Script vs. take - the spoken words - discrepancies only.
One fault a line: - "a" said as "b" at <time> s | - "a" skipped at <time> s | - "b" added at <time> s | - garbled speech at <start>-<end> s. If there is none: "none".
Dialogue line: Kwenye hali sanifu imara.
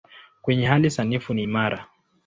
- "ni" added at 1.3 s